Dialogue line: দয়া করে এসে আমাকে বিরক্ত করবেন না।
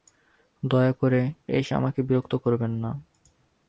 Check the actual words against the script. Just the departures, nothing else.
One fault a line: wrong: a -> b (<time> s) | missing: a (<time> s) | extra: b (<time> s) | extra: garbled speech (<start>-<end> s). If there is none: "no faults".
no faults